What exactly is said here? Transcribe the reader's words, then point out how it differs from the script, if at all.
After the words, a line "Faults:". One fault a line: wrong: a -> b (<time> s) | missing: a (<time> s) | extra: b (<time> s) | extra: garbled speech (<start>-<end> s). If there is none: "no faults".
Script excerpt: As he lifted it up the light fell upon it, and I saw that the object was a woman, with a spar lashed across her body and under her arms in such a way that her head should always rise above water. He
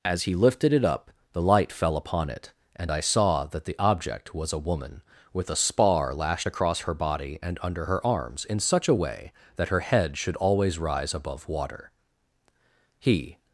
As he lifted it up the light fell upon it, and I saw that the object was a woman, with a spar lashed across her body and under her arms in such a way that her head should always rise above water. He
Faults:
no faults